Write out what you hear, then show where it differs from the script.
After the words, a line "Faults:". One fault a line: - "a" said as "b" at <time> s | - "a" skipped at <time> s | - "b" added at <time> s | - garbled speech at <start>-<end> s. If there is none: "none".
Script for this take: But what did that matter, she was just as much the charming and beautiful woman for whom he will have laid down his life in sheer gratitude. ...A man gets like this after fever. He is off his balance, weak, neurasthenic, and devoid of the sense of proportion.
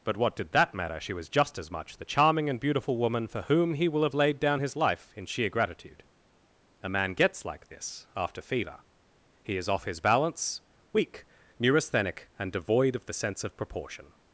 But what did that matter, she was just as much the charming and beautiful woman for whom he will have laid down his life in sheer gratitude. ...A man gets like this after fever. He is off his balance, weak, neurasthenic, and devoid of the sense of proportion.
Faults:
none